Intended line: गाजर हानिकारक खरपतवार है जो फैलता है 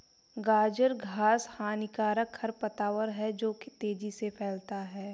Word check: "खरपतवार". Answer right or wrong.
right